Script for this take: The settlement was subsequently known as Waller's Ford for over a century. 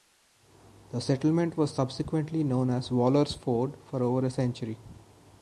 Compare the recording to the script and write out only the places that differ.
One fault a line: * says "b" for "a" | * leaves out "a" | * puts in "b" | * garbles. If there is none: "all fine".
all fine